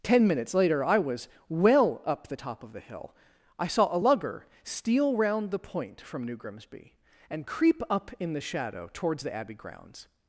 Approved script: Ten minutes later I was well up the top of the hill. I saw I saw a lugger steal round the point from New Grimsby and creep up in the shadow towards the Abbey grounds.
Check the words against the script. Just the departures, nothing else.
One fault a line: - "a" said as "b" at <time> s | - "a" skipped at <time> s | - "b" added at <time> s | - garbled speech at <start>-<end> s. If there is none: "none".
- "I saw" skipped at 3.9 s